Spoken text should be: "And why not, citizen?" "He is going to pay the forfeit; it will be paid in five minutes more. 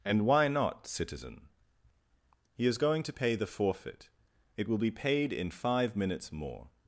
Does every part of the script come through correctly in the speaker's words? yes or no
yes